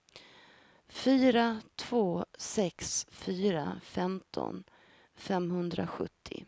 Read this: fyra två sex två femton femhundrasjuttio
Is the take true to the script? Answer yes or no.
no